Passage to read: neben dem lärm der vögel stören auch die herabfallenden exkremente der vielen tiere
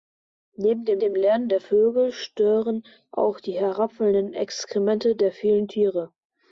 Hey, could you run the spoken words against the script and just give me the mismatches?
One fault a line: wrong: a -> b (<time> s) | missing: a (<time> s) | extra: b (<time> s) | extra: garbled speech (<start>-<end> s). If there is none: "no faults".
extra: dem (1.0 s)